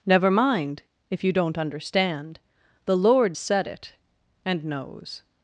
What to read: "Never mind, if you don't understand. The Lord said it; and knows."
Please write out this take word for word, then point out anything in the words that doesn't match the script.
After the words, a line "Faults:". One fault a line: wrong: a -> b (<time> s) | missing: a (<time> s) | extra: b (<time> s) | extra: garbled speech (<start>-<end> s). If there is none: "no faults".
"Never mind, if you don't understand. The Lord said it; and knows."
Faults:
no faults